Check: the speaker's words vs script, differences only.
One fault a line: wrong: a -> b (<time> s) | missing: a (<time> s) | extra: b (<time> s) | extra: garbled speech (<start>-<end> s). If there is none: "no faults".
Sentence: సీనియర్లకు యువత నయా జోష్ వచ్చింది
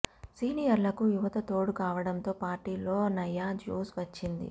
extra: తోడు కావడంతో పార్టీలో (1.5 s)